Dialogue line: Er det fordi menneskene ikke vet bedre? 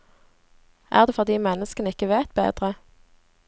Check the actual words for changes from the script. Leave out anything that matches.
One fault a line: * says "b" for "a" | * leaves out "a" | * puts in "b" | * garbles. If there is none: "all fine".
all fine